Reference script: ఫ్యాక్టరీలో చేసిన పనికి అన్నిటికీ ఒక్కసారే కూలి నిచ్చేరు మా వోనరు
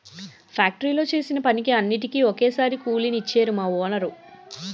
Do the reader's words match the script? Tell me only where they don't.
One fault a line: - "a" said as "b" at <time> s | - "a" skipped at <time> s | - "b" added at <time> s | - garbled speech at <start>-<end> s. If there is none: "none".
none